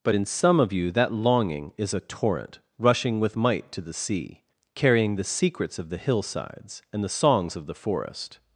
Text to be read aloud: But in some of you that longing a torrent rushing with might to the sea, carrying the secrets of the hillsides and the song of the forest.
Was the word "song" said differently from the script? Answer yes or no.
yes